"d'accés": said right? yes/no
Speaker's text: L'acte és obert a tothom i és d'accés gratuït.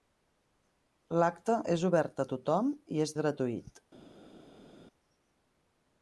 no